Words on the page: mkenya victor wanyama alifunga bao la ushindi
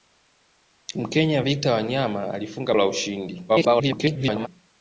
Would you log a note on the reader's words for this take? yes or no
yes